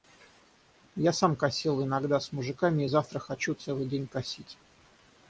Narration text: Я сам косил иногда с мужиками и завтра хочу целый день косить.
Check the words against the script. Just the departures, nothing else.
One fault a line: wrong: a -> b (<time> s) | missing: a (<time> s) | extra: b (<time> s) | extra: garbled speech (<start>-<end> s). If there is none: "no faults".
no faults